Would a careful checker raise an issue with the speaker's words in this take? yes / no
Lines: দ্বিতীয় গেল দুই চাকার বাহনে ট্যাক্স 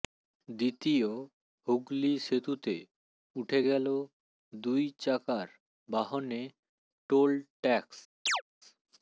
yes